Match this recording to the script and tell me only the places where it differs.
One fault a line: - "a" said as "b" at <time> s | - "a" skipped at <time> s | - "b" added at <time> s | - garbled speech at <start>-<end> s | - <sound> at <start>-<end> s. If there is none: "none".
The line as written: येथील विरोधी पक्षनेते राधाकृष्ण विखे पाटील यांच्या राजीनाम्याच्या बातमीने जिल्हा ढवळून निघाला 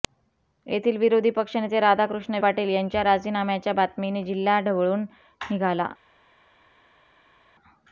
- "विखे" skipped at 2.4 s